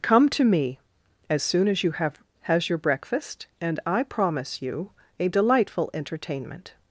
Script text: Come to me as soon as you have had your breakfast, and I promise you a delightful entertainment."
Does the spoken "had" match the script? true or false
false